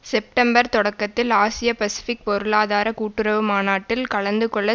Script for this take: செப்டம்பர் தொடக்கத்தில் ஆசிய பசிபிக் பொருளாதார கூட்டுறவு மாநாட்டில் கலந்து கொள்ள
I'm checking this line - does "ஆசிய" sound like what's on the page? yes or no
yes